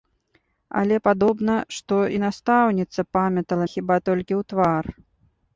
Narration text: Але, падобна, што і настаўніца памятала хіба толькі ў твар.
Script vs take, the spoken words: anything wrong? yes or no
no